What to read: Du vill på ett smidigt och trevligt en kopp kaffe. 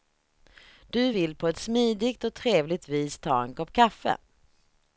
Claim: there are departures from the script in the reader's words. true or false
true